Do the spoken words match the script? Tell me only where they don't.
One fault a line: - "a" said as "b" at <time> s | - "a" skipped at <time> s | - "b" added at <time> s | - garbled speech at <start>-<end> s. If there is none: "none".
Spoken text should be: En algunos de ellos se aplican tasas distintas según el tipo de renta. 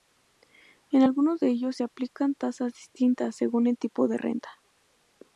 none